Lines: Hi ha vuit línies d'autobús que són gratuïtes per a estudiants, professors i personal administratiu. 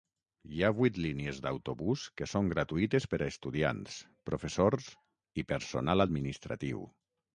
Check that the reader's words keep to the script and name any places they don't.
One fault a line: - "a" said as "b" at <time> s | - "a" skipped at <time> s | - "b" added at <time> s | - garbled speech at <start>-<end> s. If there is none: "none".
none